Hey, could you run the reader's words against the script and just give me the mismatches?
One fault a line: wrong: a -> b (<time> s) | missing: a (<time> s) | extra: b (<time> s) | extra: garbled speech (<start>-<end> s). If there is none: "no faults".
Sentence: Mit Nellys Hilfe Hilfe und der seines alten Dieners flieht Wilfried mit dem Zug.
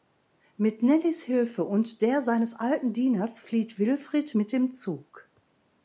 missing: Hilfe (1.6 s)